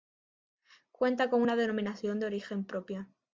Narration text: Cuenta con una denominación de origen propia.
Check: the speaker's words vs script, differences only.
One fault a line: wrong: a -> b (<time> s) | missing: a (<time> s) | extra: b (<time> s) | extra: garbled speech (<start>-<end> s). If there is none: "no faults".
no faults